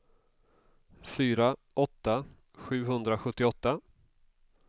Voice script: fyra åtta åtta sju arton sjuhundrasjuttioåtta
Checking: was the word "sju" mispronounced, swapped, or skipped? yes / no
yes